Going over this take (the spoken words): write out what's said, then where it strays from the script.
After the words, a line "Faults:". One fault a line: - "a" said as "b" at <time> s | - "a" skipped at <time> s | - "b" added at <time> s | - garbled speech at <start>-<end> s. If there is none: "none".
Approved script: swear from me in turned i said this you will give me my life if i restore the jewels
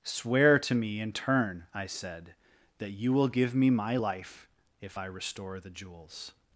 swear to me in turn i said that you will give me my life if i restore the jewels
Faults:
- "from" said as "to" at 0.6 s
- "turned" said as "turn" at 1.1 s
- "this" said as "that" at 2.8 s